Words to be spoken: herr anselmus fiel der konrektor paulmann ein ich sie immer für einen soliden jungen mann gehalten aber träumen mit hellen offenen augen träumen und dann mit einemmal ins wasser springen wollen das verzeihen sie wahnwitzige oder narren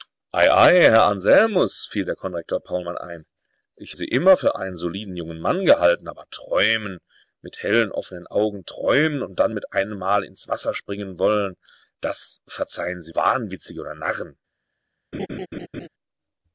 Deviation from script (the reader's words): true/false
false